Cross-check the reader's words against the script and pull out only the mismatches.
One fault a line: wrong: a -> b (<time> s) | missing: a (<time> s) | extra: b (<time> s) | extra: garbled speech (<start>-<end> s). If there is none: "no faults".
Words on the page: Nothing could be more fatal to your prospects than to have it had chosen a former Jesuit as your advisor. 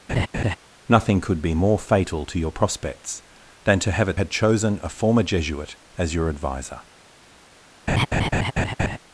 no faults